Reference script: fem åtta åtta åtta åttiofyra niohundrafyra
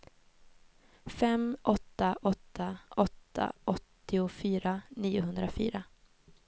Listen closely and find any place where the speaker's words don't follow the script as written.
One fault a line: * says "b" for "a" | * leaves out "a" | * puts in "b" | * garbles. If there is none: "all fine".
all fine